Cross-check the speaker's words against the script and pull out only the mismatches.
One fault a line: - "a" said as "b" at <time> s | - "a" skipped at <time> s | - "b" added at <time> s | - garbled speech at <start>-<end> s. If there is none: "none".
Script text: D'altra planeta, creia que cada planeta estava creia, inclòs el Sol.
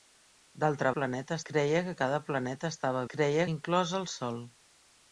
none